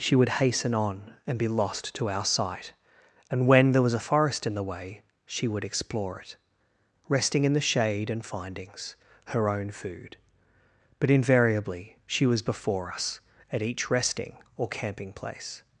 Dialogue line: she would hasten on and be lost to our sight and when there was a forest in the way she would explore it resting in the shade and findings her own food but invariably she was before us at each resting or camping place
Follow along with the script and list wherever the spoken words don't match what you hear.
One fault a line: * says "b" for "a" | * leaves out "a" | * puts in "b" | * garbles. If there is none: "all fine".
all fine